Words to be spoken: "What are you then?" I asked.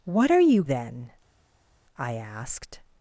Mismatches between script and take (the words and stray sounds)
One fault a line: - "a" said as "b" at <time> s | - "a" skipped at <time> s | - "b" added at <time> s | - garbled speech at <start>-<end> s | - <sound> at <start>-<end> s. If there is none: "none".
none